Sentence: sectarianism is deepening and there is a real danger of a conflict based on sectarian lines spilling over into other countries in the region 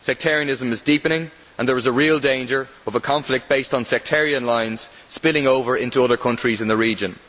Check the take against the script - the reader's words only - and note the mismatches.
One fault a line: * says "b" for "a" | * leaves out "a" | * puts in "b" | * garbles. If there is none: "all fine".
all fine